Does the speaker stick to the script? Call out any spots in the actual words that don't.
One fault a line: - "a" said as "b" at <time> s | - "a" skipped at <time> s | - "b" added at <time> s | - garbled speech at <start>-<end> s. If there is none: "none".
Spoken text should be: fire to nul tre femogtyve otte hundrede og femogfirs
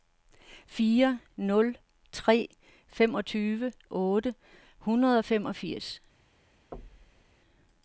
- "to" skipped at 1.2 s